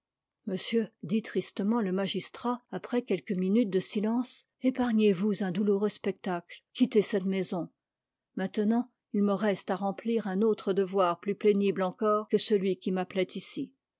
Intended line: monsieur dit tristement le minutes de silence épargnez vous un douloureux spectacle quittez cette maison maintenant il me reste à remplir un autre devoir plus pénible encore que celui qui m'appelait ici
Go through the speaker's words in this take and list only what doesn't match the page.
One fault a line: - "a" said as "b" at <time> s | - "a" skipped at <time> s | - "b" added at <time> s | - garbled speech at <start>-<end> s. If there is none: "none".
- "magistrat après quelques" added at 1.9 s